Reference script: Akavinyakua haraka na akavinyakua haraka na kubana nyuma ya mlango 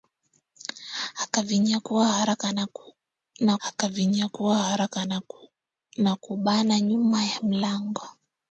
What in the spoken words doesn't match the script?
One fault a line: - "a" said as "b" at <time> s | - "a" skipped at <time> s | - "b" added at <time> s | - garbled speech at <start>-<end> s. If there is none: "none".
none